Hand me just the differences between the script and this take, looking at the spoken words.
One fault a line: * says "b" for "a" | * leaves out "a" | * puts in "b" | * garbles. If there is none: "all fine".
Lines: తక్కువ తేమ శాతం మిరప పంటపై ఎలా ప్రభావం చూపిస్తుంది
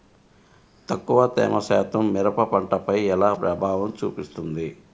all fine